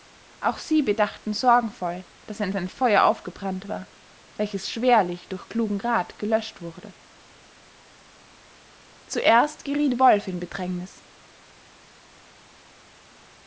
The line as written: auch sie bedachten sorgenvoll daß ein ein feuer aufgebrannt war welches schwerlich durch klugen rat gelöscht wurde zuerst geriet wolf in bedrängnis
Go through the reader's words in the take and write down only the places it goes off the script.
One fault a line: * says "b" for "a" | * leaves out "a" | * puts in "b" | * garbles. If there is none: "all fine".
all fine